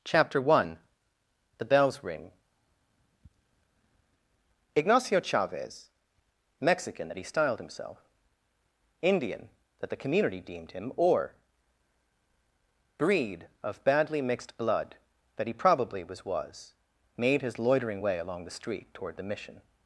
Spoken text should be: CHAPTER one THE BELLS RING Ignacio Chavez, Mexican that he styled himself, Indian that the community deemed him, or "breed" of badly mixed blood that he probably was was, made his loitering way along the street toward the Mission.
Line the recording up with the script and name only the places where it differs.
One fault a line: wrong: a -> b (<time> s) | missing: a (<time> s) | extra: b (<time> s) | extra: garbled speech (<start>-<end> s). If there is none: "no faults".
no faults